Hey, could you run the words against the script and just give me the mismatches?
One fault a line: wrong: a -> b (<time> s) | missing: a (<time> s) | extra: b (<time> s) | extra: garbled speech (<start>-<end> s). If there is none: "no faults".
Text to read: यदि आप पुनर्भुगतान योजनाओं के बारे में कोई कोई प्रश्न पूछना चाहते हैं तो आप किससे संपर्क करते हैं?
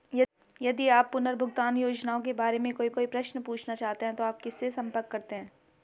no faults